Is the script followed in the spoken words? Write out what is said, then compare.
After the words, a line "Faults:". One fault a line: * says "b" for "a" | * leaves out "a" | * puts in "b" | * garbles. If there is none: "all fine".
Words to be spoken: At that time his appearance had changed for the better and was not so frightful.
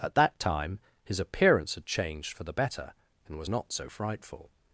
At that time his appearance had changed for the better and was not so frightful.
Faults:
all fine